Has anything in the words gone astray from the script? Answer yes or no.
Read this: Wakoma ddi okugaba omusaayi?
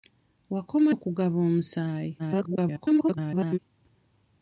yes